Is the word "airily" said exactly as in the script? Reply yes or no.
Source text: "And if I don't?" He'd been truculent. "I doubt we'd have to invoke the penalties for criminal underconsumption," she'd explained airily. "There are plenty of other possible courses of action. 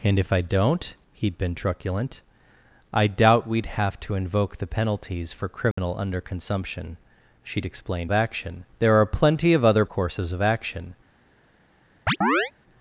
no